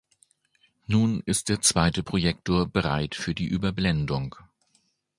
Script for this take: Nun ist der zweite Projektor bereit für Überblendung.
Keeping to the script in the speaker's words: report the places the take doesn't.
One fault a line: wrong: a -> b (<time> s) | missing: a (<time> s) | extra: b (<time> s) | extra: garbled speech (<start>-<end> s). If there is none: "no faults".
extra: die (3.3 s)